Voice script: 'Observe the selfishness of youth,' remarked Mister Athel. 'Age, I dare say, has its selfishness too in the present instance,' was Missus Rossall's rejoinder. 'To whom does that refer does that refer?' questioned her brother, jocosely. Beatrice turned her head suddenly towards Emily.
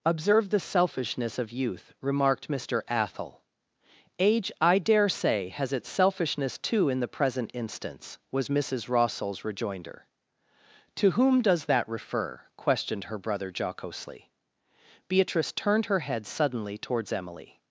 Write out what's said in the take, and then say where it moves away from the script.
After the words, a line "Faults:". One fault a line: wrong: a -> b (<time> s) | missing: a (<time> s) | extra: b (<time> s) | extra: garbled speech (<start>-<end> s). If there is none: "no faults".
'Observe the selfishness of youth,' remarked Mister Athel. 'Age, I dare say, has its selfishness too in the present instance,' was Missus Rossall's rejoinder. 'To whom does that refer?' questioned her brother, jocosely. Beatrice turned her head suddenly towards Emily.
Faults:
missing: does that refer (12.4 s)